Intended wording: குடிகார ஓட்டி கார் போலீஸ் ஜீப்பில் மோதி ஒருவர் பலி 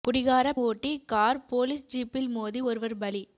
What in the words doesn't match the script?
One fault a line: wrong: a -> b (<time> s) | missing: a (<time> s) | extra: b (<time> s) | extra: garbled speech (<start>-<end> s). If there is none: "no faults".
no faults